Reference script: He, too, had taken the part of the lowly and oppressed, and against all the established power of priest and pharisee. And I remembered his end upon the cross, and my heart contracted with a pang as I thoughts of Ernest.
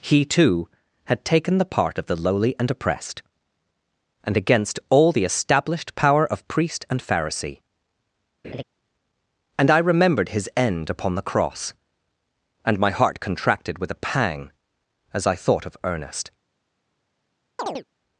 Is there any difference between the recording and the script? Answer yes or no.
yes